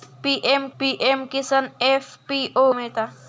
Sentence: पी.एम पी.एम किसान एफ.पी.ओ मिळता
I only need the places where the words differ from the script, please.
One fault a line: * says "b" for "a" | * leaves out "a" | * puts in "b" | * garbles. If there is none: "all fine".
all fine